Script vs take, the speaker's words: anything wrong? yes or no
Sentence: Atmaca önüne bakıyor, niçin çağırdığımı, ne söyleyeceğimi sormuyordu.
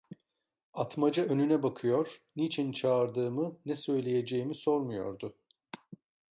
no